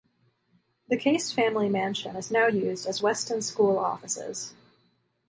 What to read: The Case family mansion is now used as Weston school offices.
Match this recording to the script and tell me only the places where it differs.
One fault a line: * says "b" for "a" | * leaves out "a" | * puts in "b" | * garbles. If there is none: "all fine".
all fine